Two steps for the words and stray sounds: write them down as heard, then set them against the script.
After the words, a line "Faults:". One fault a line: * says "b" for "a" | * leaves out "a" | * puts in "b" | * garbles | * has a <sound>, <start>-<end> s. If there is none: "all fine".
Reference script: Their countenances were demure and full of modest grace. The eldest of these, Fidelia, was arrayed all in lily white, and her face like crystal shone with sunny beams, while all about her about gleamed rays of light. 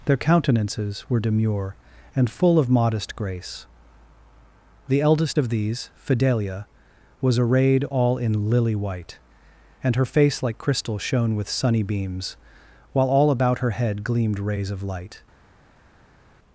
Their countenances were demure and full of modest grace. The eldest of these, Fidelia, was arrayed all in lily white, and her face like crystal shone with sunny beams, while all about her head gleamed rays of light.
Faults:
* says "head" for "about"